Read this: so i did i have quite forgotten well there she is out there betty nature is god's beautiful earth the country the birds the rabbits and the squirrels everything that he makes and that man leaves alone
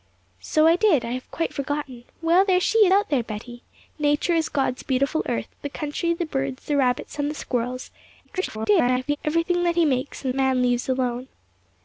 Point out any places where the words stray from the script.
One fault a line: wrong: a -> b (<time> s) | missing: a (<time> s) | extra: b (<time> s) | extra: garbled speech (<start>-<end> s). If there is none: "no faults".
missing: is (2.9 s)
extra: garbled speech (8.2-9.2 s)
missing: that (10.3 s)